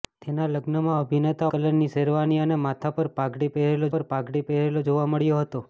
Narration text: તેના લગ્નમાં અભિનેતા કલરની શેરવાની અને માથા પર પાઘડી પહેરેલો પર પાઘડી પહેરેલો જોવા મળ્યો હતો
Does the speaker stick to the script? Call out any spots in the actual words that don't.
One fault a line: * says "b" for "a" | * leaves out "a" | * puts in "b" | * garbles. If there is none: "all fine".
all fine